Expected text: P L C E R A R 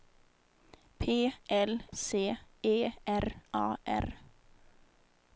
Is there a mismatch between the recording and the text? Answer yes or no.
no